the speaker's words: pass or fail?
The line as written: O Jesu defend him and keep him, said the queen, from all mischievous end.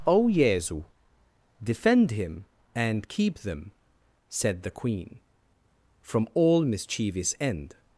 fail